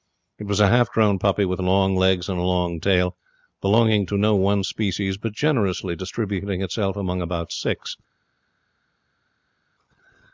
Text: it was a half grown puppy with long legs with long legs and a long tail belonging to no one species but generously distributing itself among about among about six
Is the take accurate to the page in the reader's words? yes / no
no